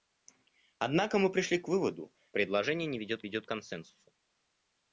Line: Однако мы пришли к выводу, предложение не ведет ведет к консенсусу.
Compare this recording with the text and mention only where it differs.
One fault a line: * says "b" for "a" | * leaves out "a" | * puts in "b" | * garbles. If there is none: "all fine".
all fine